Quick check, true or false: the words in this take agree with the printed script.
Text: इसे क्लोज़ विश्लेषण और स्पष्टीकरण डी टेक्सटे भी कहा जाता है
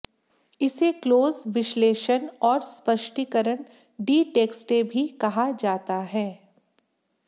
true